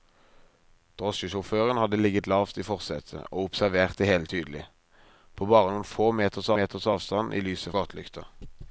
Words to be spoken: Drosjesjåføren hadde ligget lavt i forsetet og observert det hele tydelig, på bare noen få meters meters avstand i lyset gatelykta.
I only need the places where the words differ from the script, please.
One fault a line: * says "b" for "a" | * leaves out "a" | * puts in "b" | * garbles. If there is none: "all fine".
all fine